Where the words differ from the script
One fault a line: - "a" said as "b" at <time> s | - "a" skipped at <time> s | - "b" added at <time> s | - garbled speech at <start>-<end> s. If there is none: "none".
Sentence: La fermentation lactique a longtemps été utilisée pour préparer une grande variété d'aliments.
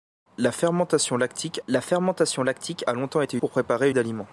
- "la fermentation lactique" added at 1.7 s
- "utilisée" skipped at 3.4 s
- "une grande variété" skipped at 3.9 s